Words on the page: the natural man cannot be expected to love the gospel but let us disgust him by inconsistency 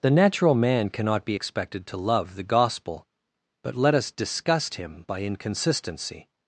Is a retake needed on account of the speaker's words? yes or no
no